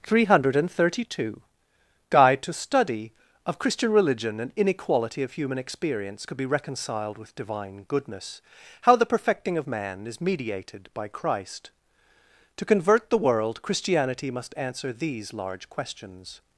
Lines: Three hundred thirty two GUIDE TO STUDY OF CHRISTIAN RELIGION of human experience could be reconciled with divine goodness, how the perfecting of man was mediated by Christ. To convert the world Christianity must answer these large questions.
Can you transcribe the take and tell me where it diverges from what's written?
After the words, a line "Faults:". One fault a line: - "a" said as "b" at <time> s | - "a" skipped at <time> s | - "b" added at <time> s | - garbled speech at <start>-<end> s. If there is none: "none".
Three hundred thirty two GUIDE TO STUDY OF CHRISTIAN RELIGION and inequality of human experience could be reconciled with divine goodness, how the perfecting of man is mediated by Christ. To convert the world Christianity must answer these large questions.
Faults:
- "and inequality" added at 4.4 s
- "was" said as "is" at 10.1 s